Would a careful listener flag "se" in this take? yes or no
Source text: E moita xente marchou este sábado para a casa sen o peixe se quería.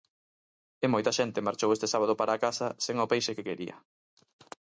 yes